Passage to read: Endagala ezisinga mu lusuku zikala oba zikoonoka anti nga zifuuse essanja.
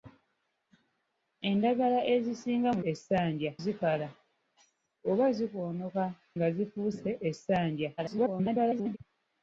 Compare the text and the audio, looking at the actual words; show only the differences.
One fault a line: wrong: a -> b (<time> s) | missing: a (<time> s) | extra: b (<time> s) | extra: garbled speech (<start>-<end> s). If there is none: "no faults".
wrong: lusuku -> essanja (2.9 s)
missing: anti (6.0 s)
extra: garbled speech (8.0-9.0 s)